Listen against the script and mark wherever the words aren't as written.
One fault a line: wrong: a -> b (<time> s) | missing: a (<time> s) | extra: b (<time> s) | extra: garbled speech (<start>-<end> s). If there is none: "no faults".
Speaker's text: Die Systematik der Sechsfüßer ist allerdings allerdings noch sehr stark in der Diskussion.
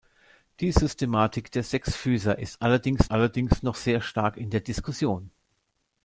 no faults